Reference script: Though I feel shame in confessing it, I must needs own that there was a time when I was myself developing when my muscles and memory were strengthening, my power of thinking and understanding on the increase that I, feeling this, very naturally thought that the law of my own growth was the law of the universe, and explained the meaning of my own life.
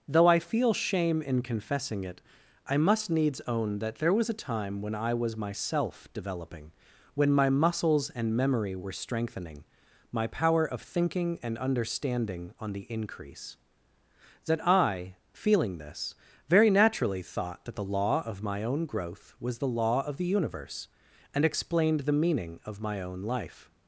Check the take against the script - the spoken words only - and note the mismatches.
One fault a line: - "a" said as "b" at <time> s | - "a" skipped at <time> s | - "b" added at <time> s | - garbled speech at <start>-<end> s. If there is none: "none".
none